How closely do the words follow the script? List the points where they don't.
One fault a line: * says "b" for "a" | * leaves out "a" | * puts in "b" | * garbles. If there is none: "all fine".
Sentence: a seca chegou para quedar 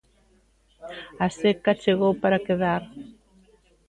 all fine